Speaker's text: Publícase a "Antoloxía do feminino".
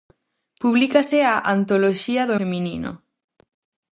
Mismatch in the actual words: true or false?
false